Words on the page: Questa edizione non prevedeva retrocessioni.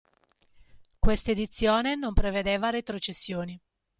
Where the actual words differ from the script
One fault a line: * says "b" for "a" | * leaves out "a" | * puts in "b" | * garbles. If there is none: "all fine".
all fine